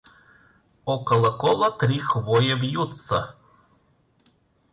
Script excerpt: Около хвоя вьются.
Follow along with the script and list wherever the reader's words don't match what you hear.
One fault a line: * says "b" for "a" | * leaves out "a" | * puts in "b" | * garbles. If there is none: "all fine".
* puts in "кола три"